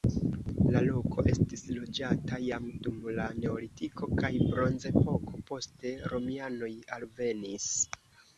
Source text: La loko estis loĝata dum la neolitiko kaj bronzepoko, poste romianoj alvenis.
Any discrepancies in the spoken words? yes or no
yes